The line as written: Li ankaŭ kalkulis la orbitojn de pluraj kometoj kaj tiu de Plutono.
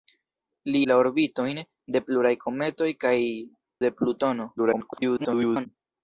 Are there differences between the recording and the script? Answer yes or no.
yes